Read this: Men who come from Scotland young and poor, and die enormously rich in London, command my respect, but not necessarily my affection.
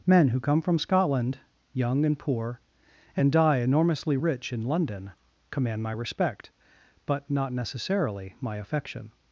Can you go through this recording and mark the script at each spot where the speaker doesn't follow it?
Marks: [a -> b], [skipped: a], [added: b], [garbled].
Men who come from Scotland young and poor, and die enormously rich in London, command my respect, but not necessarily my affection.